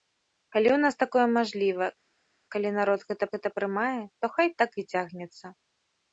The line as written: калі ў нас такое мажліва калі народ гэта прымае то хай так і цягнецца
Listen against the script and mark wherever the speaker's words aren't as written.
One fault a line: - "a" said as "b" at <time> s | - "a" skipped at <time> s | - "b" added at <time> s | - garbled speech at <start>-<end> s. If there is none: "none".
- "гэта" added at 3.3 s